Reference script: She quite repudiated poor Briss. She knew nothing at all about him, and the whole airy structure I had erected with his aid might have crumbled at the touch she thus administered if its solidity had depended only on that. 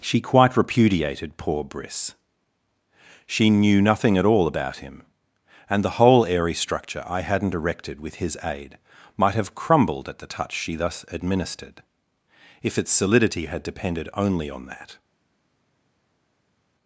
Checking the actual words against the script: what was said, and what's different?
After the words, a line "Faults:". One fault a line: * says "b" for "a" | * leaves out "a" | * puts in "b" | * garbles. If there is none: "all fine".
She quite repudiated poor Briss. She knew nothing at all about him, and the whole airy structure I hadn't erected with his aid might have crumbled at the touch she thus administered if its solidity had depended only on that.
Faults:
* says "hadn't" for "had"